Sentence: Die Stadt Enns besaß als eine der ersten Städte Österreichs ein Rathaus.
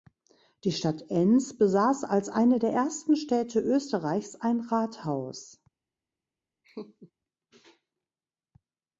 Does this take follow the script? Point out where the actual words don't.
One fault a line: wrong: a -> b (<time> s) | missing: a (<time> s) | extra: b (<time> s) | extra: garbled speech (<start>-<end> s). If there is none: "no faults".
no faults